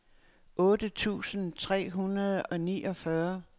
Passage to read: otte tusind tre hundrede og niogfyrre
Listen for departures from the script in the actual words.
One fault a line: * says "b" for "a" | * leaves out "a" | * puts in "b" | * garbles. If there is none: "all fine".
all fine